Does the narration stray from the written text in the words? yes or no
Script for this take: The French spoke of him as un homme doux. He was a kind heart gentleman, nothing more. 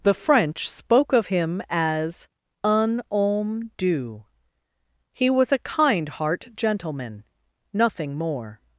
no